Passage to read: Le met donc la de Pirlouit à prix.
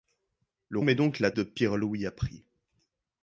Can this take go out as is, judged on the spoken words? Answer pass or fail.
pass